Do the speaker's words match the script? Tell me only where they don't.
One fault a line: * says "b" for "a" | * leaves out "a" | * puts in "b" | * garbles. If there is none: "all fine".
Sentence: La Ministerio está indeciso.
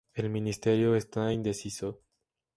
* says "El" for "La"